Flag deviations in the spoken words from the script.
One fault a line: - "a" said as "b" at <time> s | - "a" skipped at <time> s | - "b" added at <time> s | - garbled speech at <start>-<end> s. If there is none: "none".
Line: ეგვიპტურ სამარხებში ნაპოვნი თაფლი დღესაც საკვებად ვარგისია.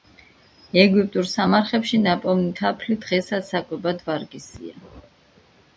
none